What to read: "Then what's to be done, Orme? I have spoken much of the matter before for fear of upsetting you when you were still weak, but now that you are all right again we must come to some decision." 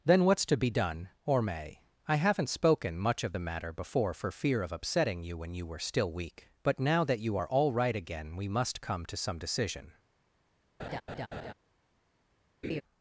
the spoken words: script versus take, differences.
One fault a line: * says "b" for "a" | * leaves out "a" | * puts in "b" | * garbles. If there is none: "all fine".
* says "haven't" for "have"